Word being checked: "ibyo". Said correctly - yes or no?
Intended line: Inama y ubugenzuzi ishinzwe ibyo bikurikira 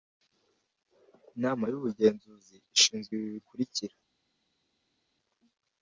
no